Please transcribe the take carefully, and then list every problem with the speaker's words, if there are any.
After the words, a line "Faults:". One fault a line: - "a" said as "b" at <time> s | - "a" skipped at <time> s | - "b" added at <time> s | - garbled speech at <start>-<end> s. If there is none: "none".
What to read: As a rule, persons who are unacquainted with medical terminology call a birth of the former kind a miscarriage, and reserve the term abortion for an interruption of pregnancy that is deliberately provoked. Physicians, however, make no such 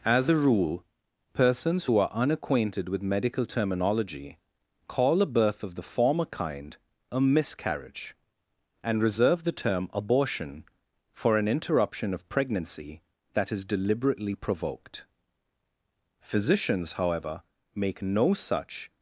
As a rule, persons who are unacquainted with medical terminology call a birth of the former kind a miscarriage, and reserve the term abortion for an interruption of pregnancy that is deliberately provoked. Physicians, however, make no such
Faults:
none